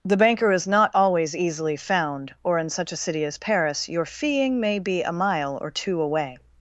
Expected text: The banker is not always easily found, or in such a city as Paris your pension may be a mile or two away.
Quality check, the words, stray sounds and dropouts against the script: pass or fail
fail